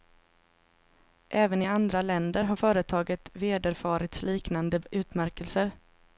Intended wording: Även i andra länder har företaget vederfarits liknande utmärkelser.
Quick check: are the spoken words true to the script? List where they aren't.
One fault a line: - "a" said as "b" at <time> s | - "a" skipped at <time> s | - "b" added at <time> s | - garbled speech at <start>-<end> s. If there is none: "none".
none